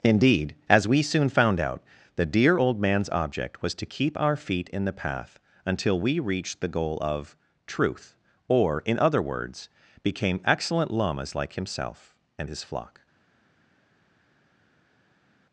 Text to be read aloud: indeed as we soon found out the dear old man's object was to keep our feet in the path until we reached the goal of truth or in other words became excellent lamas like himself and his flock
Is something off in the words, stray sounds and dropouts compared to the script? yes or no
no